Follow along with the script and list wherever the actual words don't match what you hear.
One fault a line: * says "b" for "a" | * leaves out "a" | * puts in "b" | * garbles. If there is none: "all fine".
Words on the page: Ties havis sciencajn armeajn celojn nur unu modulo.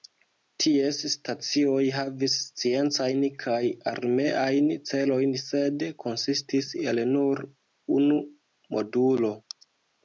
* puts in "stacioj"
* puts in "kaj"
* puts in "sed konsistis el"